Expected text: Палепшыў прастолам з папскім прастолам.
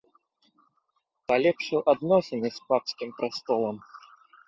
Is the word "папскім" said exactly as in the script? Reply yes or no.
yes